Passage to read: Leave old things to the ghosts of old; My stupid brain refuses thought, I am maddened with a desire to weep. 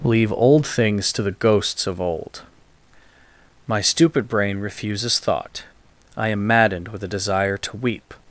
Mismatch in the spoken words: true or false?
false